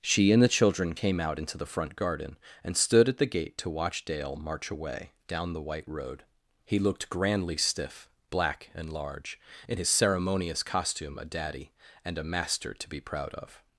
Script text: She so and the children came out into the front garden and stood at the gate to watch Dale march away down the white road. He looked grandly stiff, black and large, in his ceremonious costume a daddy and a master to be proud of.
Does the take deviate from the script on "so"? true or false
true